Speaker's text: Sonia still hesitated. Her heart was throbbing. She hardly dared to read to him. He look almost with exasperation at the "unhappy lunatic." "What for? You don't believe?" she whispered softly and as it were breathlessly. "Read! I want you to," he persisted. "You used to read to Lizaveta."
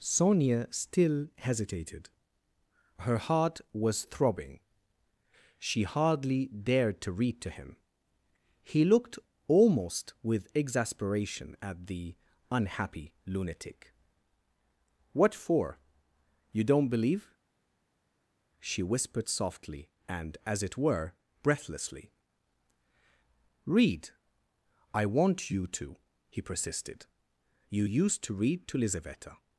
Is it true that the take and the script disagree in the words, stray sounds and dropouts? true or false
true